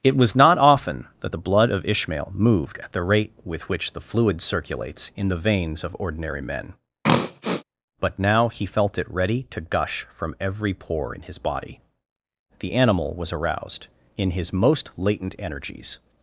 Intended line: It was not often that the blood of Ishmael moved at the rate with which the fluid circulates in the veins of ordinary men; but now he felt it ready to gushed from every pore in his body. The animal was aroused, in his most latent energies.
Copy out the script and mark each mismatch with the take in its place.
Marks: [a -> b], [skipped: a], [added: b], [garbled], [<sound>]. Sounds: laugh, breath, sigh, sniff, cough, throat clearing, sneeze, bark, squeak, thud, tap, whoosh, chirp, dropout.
It was not often that the blood of Ishmael moved at the rate with which the fluid circulates in the veins of ordinary men; [throat clearing] but now he felt it ready to [gushed -> gush] from every pore in his body. The animal was aroused, in his most latent energies.